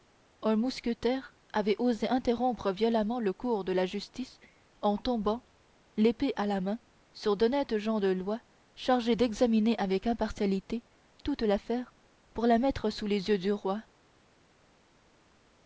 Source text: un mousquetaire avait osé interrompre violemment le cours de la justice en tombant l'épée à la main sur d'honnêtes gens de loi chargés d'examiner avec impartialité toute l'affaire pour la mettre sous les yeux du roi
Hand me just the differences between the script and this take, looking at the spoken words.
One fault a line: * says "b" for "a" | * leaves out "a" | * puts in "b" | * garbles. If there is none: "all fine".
all fine